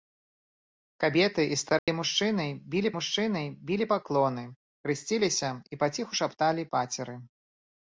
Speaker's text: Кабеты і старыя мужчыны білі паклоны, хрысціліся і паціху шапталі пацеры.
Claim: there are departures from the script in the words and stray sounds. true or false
true